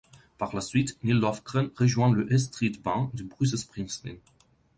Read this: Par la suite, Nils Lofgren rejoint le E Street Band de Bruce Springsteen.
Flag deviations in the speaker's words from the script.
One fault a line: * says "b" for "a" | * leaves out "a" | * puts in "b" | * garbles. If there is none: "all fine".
all fine